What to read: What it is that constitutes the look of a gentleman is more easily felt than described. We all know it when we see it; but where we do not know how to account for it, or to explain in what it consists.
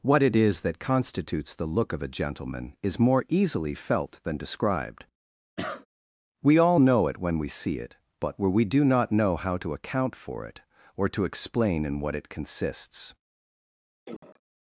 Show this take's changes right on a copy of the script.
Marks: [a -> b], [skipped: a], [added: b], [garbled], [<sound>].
What it is that constitutes the look of a gentleman is more easily felt than described. [cough] We all know it when we see it; but where we do not know how to account for it, or to explain in what it consists. [cough]